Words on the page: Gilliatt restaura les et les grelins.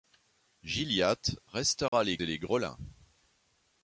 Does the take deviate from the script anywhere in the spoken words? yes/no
no